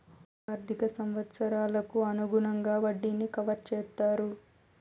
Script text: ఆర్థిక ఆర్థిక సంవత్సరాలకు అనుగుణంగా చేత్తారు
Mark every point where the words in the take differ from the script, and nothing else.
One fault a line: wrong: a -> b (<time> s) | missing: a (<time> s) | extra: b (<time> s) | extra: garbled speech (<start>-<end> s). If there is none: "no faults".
missing: ఆర్థిక (0.9 s)
extra: వడ్డీని కవర్ (2.8 s)